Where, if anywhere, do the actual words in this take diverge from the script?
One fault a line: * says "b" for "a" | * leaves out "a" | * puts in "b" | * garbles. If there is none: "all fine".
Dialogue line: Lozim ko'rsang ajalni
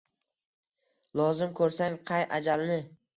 * puts in "qay"